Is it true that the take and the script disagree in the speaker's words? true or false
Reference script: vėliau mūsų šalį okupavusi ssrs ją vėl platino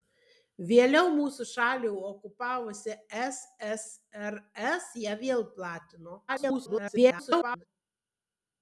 true